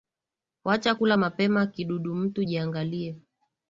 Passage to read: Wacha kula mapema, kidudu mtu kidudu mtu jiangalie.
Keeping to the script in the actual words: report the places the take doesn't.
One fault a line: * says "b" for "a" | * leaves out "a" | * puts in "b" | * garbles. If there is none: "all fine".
* leaves out "kidudu mtu"